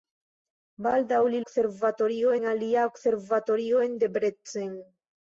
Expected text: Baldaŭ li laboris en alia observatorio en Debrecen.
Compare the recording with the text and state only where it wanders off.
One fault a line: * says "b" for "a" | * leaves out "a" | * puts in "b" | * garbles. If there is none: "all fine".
* says "observatorio" for "laboris"